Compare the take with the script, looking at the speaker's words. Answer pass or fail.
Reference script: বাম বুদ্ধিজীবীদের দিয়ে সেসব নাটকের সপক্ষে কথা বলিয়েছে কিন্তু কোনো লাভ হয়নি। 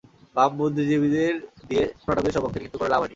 fail